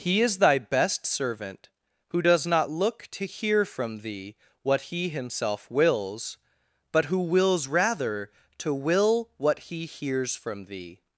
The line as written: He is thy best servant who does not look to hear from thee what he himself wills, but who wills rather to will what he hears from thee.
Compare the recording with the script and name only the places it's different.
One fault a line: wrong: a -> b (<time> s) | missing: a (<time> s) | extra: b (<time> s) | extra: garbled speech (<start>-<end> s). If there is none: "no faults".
no faults